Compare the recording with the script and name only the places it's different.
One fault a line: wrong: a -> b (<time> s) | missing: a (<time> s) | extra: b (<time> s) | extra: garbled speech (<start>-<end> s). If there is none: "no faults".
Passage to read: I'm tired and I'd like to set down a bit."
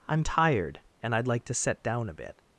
no faults